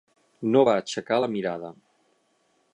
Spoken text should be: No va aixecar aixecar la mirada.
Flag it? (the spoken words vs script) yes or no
yes